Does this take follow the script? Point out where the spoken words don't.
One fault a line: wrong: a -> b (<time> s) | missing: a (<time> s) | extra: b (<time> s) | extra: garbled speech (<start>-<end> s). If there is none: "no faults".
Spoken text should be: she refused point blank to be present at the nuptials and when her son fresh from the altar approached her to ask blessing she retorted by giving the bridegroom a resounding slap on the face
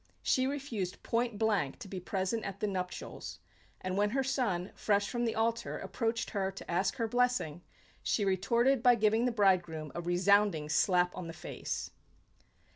extra: her (7.0 s)